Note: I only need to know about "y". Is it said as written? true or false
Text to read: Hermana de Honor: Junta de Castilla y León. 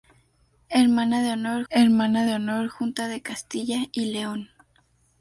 true